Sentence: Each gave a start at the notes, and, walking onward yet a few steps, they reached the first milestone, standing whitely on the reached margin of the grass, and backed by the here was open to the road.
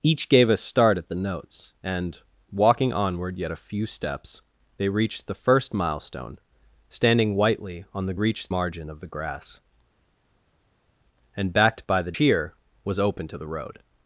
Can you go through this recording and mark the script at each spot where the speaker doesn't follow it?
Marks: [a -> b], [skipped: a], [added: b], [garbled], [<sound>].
Each gave a start at the notes, and, walking onward yet a few steps, they reached the first milestone, standing whitely on the reached margin of the grass, and backed by the here was open to the road.